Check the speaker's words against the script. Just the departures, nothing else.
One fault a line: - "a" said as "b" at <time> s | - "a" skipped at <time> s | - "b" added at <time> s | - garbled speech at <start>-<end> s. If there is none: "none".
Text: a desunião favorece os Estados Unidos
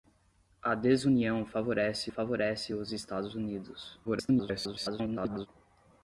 - "favorece" added at 2.1 s
- garbled speech at 4.0-5.5 s